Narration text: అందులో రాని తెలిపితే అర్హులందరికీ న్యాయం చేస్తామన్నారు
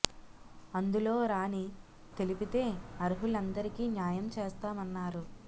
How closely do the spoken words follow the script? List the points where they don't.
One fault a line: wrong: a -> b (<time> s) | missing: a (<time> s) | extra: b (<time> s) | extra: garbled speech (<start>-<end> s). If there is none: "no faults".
no faults